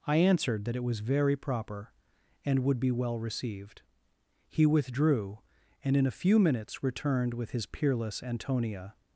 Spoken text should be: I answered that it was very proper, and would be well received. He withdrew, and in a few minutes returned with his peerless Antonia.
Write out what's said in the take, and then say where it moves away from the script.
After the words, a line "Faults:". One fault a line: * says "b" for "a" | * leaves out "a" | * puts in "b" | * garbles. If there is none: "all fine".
I answered that it was very proper, and would be well received. He withdrew, and in a few minutes returned with his peerless Antonia.
Faults:
all fine